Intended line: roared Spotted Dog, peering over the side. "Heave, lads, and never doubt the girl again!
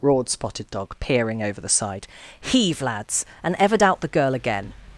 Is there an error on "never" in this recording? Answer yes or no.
yes